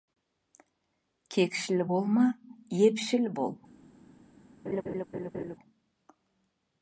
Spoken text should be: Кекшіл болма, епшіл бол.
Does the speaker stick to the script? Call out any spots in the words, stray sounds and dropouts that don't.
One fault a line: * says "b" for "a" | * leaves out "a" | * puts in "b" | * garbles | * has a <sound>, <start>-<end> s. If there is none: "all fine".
* has a laugh, 4.6-5.6 s